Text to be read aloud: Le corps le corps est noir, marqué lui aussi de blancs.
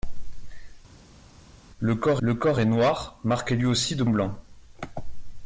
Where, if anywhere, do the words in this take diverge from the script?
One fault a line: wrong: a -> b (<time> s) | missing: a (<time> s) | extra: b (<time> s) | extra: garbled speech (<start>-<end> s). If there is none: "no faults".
no faults